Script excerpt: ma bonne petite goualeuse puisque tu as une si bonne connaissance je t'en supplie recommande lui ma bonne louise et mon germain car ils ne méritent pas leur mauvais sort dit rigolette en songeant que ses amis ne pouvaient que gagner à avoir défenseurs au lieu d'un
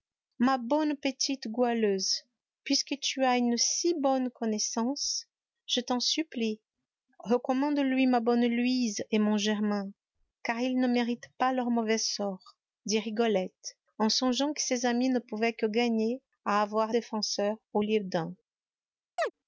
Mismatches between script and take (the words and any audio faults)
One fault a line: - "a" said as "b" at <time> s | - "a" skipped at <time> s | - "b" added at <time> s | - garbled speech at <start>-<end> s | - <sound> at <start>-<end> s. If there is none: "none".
- chirp at 19.2-19.3 s